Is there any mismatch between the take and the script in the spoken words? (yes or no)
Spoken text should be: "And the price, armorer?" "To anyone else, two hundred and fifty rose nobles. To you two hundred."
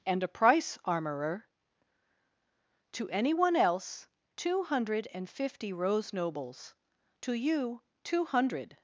yes